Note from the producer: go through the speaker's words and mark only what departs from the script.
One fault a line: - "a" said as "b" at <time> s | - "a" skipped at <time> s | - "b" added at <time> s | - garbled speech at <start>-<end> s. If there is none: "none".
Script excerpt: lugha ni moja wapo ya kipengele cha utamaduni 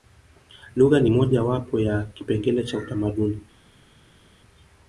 none